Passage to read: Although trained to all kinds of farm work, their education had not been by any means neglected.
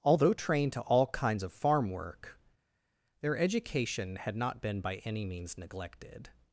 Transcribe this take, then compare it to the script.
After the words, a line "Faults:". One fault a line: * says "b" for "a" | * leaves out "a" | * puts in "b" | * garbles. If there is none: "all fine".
Although trained to all kinds of farm work, their education had not been by any means neglected.
Faults:
all fine